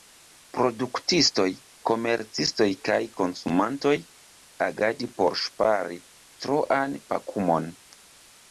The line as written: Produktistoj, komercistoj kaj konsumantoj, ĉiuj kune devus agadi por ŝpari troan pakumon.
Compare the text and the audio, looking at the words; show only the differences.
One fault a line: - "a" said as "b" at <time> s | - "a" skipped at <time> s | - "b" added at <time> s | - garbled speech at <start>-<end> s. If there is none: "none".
- "ĉiuj kune devus" skipped at 3.9 s